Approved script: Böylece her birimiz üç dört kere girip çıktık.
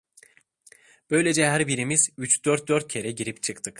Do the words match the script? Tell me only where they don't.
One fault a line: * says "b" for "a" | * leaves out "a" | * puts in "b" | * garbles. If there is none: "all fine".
* puts in "dört"